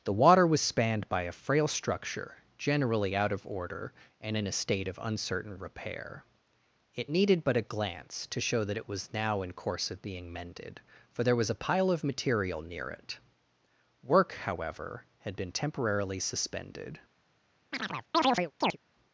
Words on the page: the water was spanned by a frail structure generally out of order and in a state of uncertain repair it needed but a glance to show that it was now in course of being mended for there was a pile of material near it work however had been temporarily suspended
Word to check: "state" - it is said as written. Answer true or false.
true